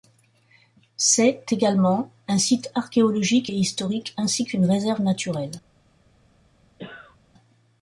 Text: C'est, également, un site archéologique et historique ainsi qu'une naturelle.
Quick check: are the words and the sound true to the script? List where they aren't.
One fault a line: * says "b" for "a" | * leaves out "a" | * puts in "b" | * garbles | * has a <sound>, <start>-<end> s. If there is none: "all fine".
* puts in "réserve"
* has a cough, 6.8-7.2 s